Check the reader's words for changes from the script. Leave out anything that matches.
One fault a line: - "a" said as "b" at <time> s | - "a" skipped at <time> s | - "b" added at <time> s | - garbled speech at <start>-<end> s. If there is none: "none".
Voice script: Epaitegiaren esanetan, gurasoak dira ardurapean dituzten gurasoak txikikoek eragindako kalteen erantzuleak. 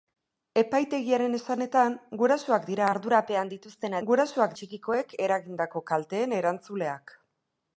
none